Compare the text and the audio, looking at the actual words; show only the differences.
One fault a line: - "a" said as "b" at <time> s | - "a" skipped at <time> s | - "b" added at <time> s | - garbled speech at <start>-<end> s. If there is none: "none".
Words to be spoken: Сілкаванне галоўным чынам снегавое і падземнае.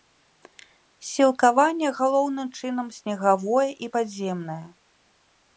none